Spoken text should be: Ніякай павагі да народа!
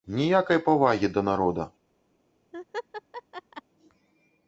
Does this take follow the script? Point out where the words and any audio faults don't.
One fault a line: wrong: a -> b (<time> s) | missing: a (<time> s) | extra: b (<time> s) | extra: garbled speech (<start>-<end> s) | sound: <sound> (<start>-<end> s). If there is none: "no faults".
sound: laugh (2.5-3.6 s)